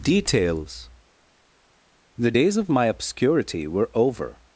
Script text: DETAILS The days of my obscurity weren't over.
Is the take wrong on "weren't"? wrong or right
wrong